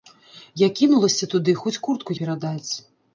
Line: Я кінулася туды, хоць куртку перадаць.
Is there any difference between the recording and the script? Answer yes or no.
no